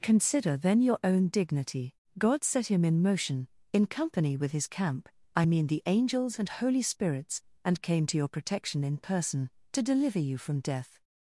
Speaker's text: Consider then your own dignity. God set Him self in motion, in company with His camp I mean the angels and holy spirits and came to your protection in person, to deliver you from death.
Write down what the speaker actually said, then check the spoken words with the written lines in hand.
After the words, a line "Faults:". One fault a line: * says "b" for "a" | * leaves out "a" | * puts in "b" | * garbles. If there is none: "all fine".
Consider then your own dignity. God set Him in motion, in company with His camp I mean the angels and holy spirits and came to your protection in person, to deliver you from death.
Faults:
* leaves out "self"